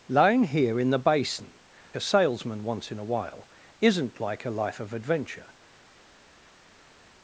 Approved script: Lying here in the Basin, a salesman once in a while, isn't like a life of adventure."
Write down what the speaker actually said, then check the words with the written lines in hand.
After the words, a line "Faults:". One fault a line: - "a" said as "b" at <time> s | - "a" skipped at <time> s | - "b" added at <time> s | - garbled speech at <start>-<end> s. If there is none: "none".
Lying here in the Basin, a salesman once in a while, isn't like a life of adventure."
Faults:
none